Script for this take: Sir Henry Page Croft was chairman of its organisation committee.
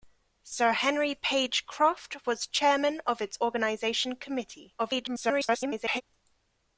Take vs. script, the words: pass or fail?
fail